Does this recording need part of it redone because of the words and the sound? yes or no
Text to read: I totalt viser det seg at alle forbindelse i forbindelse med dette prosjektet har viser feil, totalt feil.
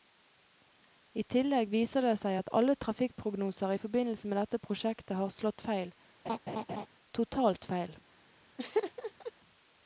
yes